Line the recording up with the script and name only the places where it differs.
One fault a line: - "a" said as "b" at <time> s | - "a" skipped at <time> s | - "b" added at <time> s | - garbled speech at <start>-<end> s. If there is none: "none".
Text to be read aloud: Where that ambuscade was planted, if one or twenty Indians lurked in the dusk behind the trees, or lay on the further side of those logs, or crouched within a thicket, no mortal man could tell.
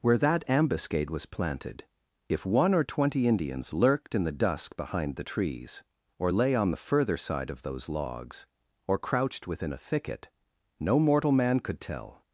none